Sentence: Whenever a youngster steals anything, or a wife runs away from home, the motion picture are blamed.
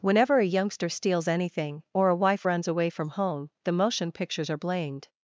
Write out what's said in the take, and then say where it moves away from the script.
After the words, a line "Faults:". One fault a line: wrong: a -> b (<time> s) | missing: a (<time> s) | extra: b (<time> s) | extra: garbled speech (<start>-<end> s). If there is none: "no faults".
Whenever a youngster steals anything, or a wife runs away from home, the motion pictures are blamed.
Faults:
wrong: picture -> pictures (4.1 s)